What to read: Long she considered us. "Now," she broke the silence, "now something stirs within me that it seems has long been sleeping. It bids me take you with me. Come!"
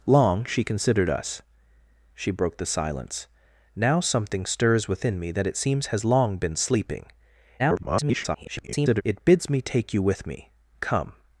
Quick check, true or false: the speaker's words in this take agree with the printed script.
false